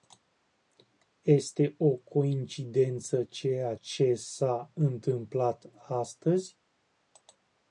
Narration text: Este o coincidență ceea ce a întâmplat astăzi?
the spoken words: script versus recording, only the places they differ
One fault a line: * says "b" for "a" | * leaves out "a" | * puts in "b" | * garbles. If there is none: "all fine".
* puts in "s"